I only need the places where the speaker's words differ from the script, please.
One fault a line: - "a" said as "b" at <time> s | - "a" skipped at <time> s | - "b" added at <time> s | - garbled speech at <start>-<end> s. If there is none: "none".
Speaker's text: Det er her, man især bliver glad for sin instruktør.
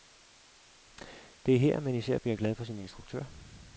none